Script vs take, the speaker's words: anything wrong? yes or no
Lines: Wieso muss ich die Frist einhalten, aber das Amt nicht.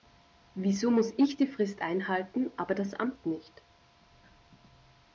no